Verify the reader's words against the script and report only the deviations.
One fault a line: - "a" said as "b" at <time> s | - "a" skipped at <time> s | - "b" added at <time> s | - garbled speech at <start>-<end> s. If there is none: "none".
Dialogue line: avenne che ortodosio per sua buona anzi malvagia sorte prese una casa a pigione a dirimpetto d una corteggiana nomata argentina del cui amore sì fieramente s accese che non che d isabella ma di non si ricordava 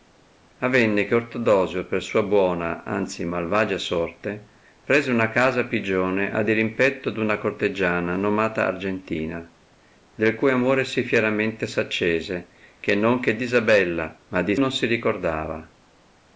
none